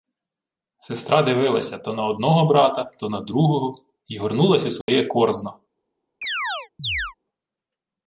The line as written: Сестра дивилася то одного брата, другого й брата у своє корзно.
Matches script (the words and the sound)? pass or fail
fail